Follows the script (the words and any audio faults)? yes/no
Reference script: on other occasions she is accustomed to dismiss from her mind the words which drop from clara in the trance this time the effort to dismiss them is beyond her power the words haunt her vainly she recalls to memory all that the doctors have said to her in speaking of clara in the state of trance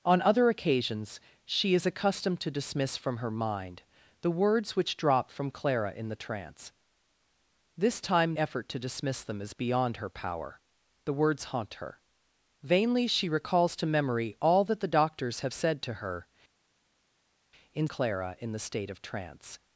no